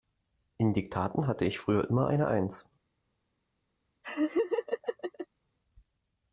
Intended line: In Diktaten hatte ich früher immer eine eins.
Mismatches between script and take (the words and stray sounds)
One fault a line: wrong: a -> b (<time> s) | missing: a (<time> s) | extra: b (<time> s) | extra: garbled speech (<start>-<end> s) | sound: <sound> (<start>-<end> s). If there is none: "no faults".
sound: laugh (4.0-5.3 s)